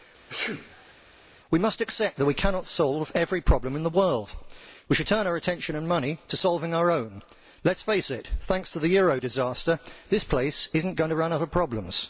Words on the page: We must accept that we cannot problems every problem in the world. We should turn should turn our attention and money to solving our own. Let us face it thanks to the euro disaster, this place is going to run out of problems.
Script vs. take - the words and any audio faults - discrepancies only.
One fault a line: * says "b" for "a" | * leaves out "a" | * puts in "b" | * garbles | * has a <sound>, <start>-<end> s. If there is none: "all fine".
* has a sneeze, 0.3-0.9 s
* says "solve" for "problems"
* leaves out "should turn"
* puts in "not"